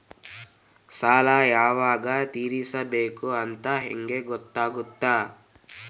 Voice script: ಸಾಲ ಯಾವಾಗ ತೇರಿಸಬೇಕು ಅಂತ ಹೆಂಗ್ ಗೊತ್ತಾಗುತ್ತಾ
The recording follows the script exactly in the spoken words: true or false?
true